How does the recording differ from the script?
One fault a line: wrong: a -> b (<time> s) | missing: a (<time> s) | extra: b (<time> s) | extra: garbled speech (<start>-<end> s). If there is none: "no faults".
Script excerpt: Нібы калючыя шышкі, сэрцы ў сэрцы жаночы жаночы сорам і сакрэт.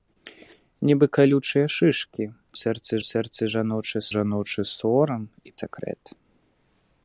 no faults